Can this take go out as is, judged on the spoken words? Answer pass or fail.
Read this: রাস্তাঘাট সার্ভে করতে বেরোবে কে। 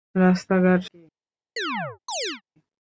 fail